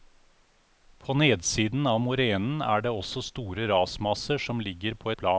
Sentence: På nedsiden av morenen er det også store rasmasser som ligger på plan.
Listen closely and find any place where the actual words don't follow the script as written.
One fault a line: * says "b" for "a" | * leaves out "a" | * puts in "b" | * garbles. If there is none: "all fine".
all fine